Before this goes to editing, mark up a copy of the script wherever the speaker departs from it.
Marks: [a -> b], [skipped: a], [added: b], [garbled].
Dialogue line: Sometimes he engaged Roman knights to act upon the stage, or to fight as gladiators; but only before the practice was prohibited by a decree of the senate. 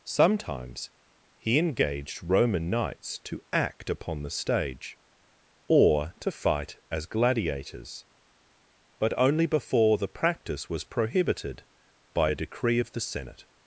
Sometimes he engaged Roman knights to act upon the stage, or to fight as gladiators; but only before the practice was prohibited by a decree of the senate.